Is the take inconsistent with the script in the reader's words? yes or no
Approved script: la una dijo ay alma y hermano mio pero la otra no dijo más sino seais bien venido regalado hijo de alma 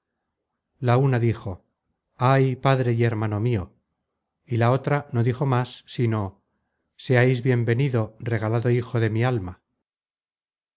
yes